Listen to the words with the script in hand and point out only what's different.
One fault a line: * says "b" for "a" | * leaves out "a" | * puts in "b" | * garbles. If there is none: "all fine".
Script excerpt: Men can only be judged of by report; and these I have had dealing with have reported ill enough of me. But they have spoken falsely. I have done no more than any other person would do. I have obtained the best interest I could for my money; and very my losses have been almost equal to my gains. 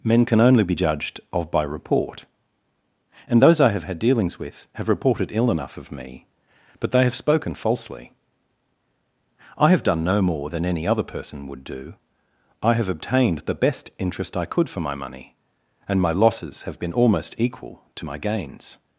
* says "those" for "these"
* says "dealings" for "dealing"
* leaves out "very"